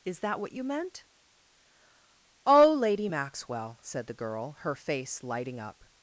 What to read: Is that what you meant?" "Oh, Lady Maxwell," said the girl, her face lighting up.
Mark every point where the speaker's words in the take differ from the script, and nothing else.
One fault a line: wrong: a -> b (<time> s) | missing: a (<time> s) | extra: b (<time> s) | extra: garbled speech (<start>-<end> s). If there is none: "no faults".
no faults